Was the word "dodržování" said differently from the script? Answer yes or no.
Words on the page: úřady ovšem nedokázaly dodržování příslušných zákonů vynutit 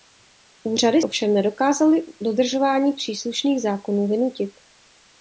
no